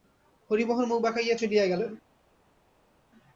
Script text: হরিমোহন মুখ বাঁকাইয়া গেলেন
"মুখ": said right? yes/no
yes